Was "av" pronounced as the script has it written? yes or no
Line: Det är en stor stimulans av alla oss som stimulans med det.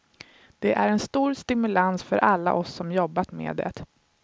no